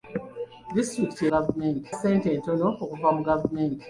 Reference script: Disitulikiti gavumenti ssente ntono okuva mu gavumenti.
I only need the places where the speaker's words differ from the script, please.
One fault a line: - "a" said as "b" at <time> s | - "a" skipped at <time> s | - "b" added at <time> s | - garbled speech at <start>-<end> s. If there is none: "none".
none